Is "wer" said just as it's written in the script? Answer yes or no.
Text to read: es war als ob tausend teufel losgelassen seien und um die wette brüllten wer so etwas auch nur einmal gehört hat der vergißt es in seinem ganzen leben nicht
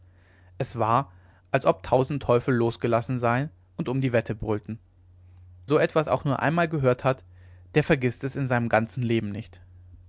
no